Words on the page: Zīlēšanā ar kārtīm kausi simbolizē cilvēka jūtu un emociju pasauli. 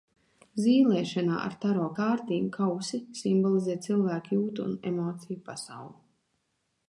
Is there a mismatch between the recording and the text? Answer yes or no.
yes